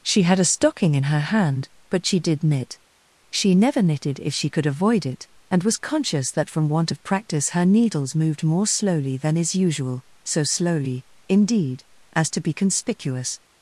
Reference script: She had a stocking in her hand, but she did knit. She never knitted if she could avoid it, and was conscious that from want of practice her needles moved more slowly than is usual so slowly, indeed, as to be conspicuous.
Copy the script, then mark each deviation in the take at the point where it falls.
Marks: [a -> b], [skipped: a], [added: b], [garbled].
She had a stocking in her hand, but she did knit. She never knitted if she could avoid it, and was conscious that from want of practice her needles moved more slowly than is usual so slowly, indeed, as to be conspicuous.